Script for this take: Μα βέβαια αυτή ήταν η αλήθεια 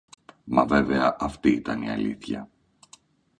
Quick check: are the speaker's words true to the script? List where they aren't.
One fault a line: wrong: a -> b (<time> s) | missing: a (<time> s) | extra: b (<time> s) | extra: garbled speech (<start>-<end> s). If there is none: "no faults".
no faults